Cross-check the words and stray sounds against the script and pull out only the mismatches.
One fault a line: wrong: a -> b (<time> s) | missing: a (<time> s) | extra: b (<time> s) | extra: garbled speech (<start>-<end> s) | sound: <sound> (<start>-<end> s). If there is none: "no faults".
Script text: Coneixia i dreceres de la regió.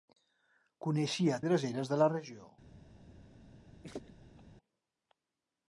sound: laugh (3.8-4.4 s)